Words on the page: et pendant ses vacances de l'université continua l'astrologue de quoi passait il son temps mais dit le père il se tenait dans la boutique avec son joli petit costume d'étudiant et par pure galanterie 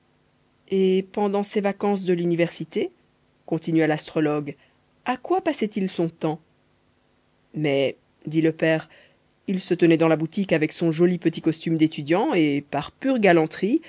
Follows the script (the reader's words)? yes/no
no